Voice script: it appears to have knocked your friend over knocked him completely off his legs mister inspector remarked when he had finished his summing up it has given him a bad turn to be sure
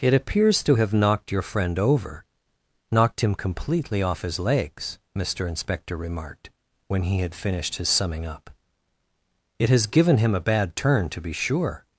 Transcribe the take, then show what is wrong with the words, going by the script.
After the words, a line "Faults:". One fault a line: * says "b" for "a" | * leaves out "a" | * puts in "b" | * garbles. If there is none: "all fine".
it appears to have knocked your friend over knocked him completely off his legs mister inspector remarked when he had finished his summing up it has given him a bad turn to be sure
Faults:
all fine